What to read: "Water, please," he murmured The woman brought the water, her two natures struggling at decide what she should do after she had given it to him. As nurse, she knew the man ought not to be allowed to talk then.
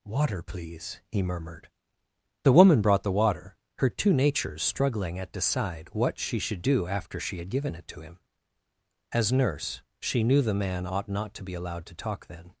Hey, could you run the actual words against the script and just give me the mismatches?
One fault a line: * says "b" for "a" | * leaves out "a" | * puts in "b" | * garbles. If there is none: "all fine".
all fine